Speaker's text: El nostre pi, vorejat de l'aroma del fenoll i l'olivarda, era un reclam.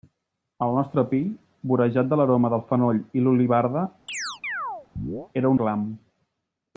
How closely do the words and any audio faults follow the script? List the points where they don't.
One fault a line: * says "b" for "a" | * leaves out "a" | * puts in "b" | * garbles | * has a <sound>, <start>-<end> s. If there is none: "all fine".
* has a chirp, 4.1-5.3 s
* leaves out "un"